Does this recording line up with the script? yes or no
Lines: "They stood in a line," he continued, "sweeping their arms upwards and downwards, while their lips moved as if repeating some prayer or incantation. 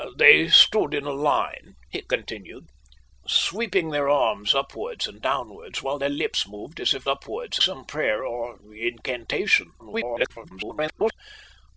no